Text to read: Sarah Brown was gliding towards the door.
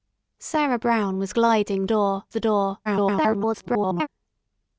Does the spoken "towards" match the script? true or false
false